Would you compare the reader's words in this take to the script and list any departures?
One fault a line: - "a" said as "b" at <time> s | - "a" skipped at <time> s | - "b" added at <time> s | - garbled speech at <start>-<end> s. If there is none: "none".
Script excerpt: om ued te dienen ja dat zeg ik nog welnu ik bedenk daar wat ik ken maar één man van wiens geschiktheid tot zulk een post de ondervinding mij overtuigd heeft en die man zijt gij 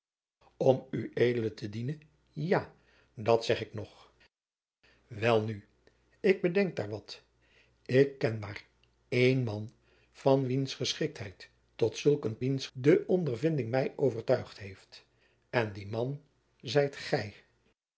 - "post" said as "wiens" at 12.4 s